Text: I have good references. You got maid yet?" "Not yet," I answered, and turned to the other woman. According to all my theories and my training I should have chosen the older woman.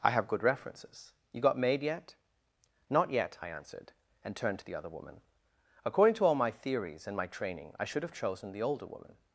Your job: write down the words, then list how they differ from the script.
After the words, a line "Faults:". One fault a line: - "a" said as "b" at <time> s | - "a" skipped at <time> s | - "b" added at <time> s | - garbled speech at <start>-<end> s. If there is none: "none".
I have good references. You got maid yet?" "Not yet," I answered, and turned to the other woman. According to all my theories and my training I should have chosen the older woman.
Faults:
none